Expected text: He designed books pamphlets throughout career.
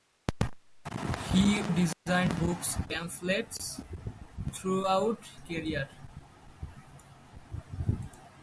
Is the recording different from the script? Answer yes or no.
no